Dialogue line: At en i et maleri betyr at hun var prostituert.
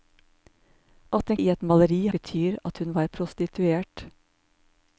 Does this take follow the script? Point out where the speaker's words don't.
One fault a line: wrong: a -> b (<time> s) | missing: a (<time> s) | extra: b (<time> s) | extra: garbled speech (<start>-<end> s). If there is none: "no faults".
no faults